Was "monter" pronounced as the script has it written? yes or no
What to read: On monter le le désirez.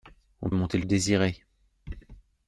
yes